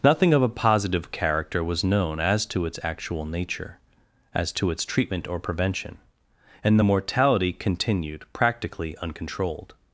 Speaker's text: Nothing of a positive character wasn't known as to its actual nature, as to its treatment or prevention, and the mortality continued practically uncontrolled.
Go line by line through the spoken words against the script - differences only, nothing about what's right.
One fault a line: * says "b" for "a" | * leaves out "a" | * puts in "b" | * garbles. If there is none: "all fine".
* says "was" for "wasn't"